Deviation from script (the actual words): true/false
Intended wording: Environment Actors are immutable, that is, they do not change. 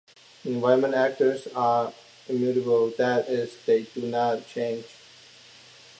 false